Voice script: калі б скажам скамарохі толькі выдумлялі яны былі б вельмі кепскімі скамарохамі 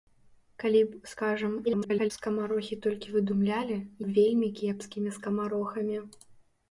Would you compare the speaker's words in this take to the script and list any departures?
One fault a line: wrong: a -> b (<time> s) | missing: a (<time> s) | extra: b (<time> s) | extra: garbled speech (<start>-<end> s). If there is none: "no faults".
extra: garbled speech (1.6-2.1 s)
missing: яны былі (3.8 s)